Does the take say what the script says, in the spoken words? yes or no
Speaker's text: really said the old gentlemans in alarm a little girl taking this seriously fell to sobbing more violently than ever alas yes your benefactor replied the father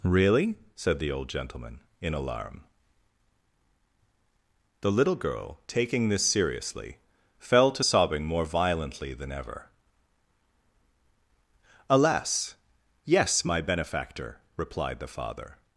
no